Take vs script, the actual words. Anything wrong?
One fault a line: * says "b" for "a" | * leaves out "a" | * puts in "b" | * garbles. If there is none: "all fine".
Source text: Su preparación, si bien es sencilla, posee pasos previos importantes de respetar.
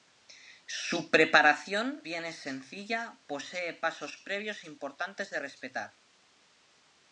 * leaves out "si"